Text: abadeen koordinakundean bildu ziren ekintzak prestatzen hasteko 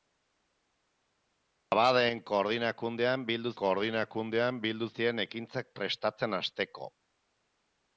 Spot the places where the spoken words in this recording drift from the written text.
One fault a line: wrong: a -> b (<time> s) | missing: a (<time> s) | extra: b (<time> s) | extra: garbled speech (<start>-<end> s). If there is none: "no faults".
extra: koordinakundean bildu (3.6 s)